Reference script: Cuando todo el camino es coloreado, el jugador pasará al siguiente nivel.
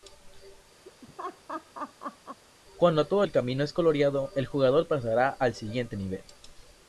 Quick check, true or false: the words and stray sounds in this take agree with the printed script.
false